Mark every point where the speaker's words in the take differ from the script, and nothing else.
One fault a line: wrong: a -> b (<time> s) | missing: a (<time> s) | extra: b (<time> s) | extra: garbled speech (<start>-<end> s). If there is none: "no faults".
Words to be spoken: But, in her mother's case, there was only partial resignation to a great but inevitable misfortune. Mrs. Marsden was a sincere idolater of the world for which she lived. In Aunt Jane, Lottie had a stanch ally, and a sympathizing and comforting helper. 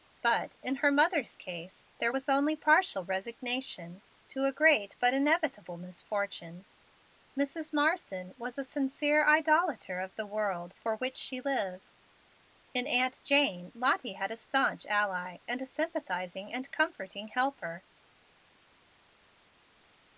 no faults